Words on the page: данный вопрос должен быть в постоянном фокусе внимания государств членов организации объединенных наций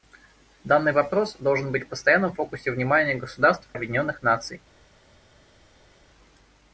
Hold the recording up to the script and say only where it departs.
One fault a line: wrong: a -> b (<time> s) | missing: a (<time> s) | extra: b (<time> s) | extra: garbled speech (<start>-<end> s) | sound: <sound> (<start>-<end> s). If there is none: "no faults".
missing: членов организации (3.7 s)